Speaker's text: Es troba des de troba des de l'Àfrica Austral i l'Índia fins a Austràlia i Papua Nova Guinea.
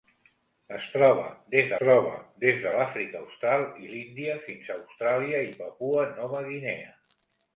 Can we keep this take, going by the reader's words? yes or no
yes